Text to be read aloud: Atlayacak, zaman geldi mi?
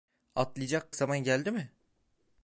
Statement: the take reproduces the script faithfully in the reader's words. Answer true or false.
true